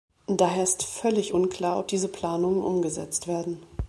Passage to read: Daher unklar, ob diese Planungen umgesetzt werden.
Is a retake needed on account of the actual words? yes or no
yes